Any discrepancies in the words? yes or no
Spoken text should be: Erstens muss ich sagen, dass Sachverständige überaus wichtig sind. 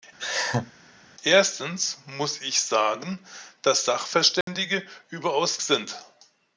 yes